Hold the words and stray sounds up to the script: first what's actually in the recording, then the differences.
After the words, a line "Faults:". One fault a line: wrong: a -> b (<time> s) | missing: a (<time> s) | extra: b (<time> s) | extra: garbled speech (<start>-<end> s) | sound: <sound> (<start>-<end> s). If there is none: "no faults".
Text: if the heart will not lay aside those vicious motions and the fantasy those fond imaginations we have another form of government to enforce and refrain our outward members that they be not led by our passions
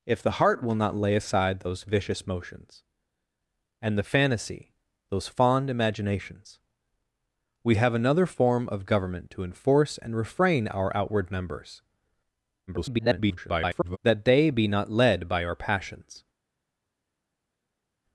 if the heart will not lay aside those vicious motions and the fantasy those fond imaginations we have another form of government to enforce and refrain our outward members [garbled] that they be not led by our passions
Faults:
extra: garbled speech (12.7-14.0 s)